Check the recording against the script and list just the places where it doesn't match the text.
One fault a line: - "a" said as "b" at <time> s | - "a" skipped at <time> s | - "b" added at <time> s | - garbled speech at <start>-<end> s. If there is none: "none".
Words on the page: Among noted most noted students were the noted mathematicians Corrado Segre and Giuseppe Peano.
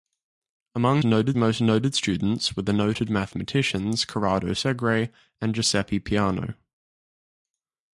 none